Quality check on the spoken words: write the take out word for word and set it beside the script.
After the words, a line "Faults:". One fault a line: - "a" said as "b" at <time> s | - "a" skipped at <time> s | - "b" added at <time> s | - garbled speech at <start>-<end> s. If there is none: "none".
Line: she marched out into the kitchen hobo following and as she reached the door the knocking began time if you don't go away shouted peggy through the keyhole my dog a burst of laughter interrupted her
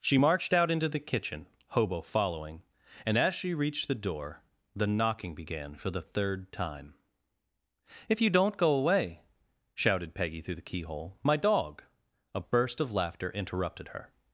she marched out into the kitchen hobo following and as she reached the door the knocking began for the third time if you don't go away shouted peggy through the keyhole my dog a burst of laughter interrupted her
Faults:
- "for the third" added at 5.7 s